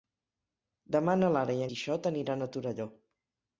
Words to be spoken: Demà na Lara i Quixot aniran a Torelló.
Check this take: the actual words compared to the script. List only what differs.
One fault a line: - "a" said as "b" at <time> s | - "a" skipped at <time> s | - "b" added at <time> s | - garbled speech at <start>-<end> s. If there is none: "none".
none